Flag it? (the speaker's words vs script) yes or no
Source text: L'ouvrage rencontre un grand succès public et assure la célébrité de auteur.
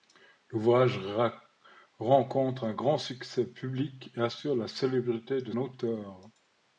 no